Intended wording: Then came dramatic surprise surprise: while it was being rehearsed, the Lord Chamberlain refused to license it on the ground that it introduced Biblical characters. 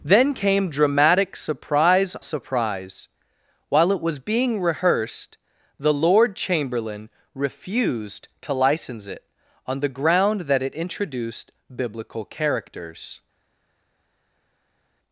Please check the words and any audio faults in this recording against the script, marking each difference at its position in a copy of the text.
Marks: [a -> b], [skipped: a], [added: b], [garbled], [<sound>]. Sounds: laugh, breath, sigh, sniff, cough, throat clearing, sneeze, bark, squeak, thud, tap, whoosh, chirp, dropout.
Then came dramatic surprise surprise: while it was being rehearsed, the Lord Chamberlain refused to license it on the ground that it introduced Biblical characters.